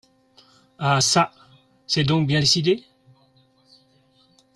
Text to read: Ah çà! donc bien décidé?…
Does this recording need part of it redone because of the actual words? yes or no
yes